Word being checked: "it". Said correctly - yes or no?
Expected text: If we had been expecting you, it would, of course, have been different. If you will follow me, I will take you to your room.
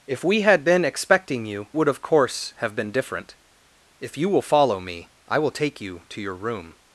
no